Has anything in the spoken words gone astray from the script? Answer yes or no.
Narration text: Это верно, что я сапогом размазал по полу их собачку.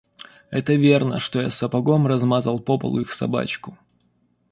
no